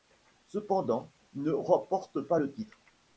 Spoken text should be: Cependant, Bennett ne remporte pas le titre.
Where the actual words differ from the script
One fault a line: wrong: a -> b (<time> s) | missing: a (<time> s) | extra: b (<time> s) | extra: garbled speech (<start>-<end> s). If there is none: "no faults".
missing: Bennett (1.1 s)